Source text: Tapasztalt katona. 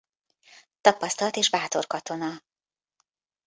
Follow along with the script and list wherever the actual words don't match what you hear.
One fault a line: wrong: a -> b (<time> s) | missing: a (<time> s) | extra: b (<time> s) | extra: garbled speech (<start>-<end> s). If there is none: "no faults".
extra: és bátor (1.4 s)